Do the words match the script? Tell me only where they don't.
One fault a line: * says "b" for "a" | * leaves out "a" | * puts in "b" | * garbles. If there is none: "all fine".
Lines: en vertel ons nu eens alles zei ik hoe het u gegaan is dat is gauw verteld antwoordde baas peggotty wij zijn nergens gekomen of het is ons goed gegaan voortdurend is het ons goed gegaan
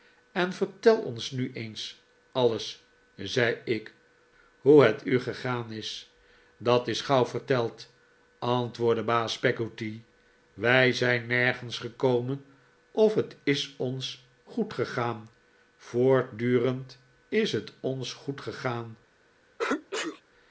all fine